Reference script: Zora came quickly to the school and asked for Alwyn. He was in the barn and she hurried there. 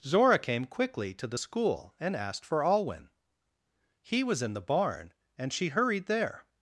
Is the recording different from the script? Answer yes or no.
no